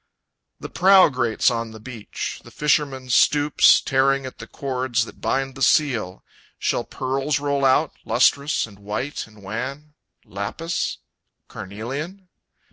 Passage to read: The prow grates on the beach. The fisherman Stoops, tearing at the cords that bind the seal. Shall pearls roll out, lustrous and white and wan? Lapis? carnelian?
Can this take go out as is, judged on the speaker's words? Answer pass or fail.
pass